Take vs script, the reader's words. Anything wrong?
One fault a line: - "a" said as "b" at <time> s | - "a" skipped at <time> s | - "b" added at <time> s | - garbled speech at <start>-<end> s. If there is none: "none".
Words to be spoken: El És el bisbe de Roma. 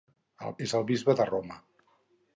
none